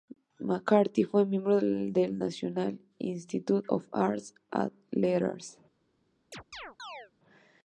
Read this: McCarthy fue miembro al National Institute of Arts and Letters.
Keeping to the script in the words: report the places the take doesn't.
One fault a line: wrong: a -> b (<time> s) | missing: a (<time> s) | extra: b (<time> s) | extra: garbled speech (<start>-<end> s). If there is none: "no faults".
wrong: al -> del (1.6 s)